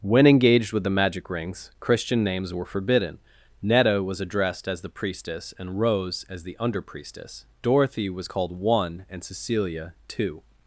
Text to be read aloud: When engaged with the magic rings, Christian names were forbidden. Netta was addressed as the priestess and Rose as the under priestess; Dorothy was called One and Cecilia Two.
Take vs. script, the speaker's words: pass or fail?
pass